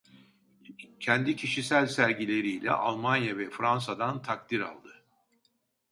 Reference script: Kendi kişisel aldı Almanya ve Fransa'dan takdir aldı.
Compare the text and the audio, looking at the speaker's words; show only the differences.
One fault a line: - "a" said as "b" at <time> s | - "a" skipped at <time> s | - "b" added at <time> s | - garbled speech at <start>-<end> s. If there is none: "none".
- "aldı" said as "sergileriyle" at 1.9 s